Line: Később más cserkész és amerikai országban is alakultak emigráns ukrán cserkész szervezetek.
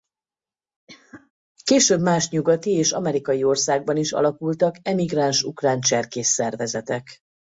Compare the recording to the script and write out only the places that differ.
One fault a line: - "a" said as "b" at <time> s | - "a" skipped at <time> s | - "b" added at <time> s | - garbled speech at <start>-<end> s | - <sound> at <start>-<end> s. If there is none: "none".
- cough at 0.9-1.3 s
- "cserkész" said as "nyugati" at 2.3 s